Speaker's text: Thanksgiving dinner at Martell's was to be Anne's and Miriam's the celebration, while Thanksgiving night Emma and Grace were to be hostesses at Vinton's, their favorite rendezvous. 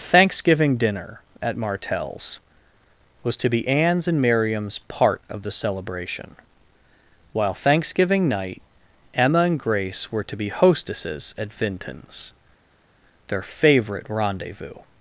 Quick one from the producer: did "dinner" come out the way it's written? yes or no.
yes